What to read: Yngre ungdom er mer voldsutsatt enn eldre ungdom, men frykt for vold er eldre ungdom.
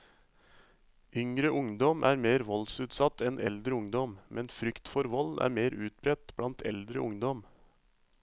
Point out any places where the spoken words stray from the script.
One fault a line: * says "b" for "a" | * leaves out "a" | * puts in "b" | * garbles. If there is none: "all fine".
* puts in "mer utbredt blant"